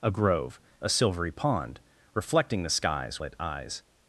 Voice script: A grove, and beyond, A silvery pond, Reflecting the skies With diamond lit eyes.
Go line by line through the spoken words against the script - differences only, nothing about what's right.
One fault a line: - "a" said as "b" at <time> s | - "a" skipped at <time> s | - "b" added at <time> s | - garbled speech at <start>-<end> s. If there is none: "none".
- "and beyond" skipped at 0.6 s
- "With diamond" skipped at 3.2 s